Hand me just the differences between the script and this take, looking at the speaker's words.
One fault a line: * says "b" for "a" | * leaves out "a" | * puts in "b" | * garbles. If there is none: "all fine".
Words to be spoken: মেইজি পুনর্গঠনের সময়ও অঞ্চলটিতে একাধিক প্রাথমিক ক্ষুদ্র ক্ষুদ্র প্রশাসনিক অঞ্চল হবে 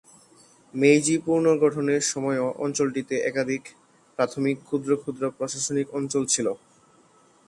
* says "ছিল" for "হবে"